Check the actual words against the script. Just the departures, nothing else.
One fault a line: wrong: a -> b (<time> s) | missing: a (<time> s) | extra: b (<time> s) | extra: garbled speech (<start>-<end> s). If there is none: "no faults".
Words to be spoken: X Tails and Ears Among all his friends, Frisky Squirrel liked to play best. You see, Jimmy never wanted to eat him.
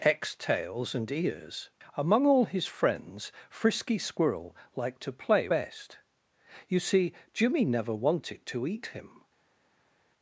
no faults